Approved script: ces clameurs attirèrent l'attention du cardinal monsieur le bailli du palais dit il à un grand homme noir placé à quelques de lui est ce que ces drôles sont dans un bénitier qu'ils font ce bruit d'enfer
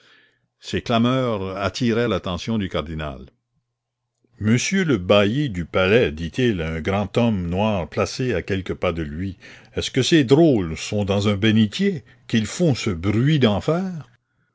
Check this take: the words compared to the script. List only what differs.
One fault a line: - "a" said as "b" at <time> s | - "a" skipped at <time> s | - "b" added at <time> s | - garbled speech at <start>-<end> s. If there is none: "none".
- "pas" added at 8.7 s